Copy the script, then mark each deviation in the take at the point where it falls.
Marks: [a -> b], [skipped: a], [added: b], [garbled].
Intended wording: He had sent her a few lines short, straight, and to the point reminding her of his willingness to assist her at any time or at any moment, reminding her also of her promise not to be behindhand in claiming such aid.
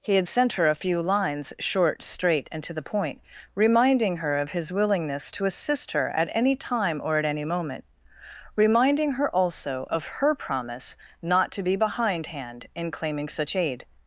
He had sent her a few lines short, straight, and to the point reminding her of his willingness to assist her at any time or at any moment, reminding her also of her promise not to be behindhand in claiming such aid.